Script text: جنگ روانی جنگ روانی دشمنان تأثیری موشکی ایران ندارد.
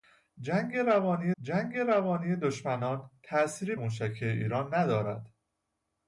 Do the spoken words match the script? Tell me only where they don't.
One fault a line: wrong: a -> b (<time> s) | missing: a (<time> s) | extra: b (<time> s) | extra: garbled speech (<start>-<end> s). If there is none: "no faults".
no faults